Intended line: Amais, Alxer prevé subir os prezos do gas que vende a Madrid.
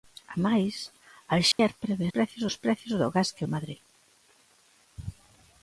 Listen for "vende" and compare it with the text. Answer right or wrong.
wrong